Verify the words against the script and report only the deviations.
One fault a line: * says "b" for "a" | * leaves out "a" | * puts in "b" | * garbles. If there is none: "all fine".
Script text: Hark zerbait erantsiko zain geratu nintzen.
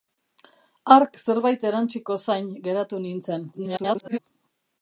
* garbles